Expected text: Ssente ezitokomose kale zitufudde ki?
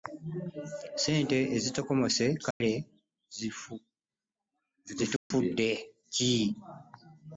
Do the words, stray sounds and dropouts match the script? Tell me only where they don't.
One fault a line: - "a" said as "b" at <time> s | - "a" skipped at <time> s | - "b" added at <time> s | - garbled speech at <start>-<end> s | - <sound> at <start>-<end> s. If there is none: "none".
- dropout at 2.5-2.6 s
- dropout at 5.2-5.3 s